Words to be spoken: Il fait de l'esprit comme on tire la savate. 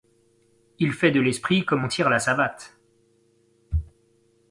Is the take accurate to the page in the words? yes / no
yes